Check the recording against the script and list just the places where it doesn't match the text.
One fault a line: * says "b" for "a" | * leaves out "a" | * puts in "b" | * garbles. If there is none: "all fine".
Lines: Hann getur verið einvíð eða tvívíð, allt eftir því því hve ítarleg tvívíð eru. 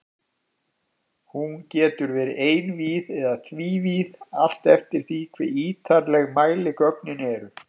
* says "Hún" for "Hann"
* leaves out "því"
* says "mæligögnin" for "tvívíð"